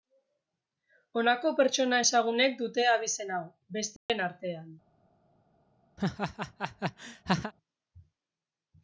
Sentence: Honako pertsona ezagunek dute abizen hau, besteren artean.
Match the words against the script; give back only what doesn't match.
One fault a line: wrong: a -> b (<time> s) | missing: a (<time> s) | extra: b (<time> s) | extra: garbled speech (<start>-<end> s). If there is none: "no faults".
no faults